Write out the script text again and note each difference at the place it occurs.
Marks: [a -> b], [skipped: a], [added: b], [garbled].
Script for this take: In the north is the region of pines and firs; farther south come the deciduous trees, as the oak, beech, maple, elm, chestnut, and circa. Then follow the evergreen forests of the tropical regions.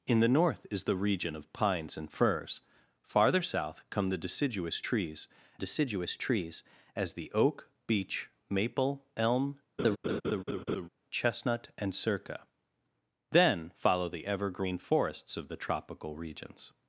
In the north is the region of pines and firs; farther south come the deciduous trees, [added: deciduous trees] as the oak, beech, maple, elm, chestnut, and circa. Then follow the evergreen forests of the tropical regions.